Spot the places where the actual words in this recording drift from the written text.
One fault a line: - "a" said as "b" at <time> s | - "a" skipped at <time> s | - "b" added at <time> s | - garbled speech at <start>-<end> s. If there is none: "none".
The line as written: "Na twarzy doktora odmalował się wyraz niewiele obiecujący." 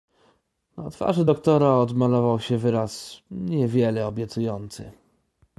none